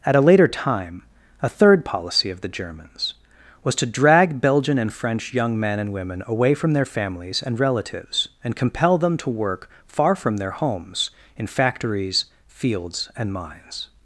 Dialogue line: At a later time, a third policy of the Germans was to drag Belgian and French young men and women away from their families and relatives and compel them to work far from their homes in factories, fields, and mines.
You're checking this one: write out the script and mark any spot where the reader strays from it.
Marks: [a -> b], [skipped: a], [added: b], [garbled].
At a later time, a third policy of the Germans was to drag Belgian and French young men and women away from their families and relatives and compel them to work far from their homes in factories, fields, and mines.